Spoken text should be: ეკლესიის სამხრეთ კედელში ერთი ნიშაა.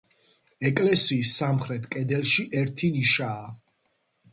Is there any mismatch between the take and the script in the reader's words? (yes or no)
no